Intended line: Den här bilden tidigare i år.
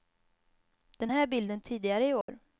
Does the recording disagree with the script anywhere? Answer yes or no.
no